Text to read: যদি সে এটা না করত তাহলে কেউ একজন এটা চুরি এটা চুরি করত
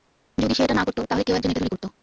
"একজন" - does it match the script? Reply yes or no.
yes